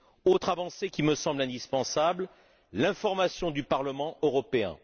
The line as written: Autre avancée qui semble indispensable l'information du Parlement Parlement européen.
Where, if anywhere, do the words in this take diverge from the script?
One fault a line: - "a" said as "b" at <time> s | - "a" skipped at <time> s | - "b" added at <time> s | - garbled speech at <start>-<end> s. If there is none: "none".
- "me" added at 1.0 s
- "Parlement" skipped at 4.2 s